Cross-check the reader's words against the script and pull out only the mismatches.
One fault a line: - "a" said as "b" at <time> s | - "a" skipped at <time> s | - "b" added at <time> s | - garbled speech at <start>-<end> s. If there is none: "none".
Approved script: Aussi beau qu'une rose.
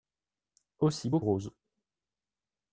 - "qu'une" skipped at 1.2 s